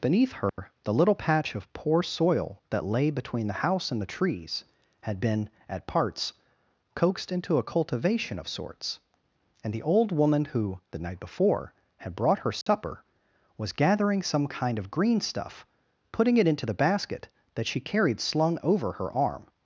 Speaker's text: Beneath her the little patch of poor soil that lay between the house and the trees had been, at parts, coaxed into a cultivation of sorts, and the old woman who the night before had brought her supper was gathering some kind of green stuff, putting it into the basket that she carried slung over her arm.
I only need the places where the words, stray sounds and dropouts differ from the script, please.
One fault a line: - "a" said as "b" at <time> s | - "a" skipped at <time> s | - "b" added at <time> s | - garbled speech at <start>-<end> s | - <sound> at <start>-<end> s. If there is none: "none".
- dropout at 0.5-0.6 s
- dropout at 12.6-12.7 s